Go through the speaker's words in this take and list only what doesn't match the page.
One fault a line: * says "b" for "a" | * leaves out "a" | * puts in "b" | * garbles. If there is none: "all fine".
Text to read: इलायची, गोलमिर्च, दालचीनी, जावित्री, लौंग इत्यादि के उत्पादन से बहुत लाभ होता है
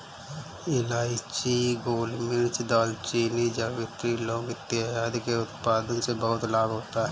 all fine